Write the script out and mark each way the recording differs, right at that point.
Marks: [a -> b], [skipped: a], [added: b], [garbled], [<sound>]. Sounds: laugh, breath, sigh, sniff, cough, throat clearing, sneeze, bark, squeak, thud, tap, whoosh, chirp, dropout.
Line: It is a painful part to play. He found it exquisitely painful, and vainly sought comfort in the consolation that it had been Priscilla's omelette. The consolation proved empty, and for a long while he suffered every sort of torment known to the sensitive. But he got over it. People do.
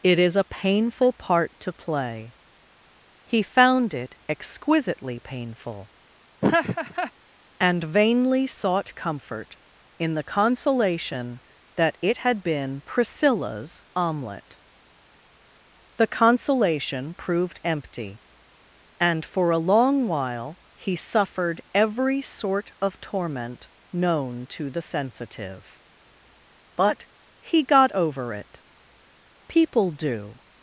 It is a painful part to play. He found it exquisitely painful, [laugh] and vainly sought comfort in the consolation that it had been Priscilla's omelette. The consolation proved empty, and for a long while he suffered every sort of torment known to the sensitive. But he got over it. People do.